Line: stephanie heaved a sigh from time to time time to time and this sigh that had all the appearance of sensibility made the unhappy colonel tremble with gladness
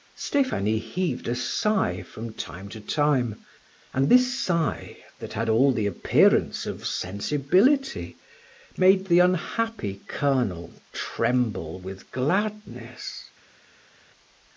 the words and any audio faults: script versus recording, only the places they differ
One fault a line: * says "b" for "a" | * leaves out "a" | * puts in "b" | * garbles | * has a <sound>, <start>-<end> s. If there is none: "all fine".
* leaves out "time to time"